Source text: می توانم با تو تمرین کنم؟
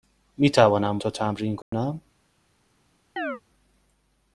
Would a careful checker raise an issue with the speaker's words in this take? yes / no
yes